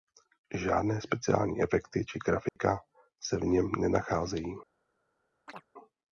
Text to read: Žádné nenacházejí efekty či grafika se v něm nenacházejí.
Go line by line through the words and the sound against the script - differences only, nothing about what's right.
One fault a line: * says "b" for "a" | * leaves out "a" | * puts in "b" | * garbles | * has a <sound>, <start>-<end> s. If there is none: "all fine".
* says "speciální" for "nenacházejí"
* has a dropout, 2.5-2.6 s
* has a chirp, 5.5-5.7 s